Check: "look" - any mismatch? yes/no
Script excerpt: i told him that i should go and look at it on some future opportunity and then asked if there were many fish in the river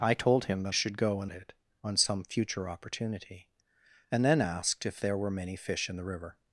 yes